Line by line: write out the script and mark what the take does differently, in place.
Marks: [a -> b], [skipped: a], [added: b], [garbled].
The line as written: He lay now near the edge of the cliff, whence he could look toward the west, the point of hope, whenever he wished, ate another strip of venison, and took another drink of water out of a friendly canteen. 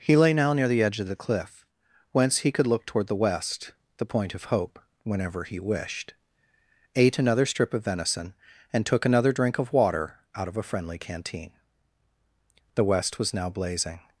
He lay now near the edge of the cliff, whence he could look toward the west, the point of hope, whenever he wished, ate another strip of venison, and took another drink of water out of a friendly canteen. [added: The west was now blazing]